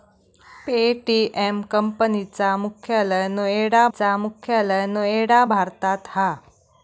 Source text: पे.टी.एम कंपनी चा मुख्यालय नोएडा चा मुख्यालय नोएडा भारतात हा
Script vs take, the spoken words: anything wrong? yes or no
no